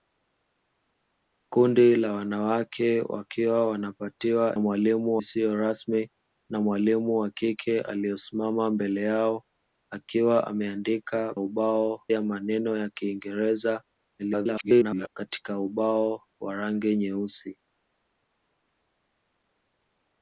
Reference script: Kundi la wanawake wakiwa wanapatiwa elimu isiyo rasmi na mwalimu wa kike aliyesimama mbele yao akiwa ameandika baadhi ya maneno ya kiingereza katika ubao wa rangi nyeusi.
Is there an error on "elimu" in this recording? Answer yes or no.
yes